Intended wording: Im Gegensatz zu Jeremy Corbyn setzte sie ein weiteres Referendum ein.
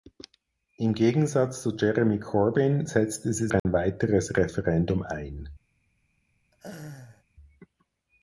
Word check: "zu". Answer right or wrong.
right